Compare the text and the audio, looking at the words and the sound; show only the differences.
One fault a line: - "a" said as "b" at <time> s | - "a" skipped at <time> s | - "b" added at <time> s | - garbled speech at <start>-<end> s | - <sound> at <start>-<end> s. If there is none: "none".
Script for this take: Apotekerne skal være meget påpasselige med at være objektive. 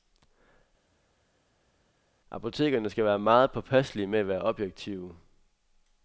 none